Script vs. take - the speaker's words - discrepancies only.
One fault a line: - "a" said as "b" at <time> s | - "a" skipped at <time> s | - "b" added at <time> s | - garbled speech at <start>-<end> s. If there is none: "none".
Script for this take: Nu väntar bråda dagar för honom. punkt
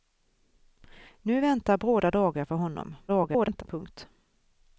- garbled speech at 3.1-3.6 s